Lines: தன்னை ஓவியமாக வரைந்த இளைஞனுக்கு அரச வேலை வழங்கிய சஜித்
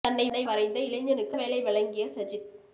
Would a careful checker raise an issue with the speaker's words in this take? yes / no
yes